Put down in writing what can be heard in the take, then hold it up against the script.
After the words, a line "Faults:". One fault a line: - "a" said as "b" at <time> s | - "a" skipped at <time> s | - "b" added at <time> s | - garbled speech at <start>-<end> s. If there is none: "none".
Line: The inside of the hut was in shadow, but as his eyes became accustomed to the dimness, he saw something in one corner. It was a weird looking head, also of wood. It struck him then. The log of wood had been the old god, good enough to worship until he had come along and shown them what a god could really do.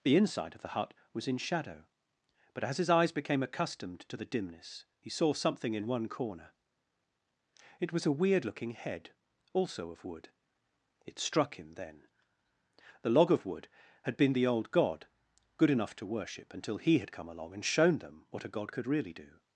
The inside of the hut was in shadow, but as his eyes became accustomed to the dimness, he saw something in one corner. It was a weird looking head, also of wood. It struck him then. The log of wood had been the old god, good enough to worship until he had come along and shown them what a god could really do.
Faults:
none